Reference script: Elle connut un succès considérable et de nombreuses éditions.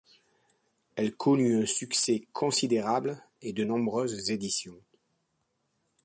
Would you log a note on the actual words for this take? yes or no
no